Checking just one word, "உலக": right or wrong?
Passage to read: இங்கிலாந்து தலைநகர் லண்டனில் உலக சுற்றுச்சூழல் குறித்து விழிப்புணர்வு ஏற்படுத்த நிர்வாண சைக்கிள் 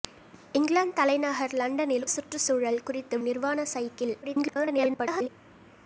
wrong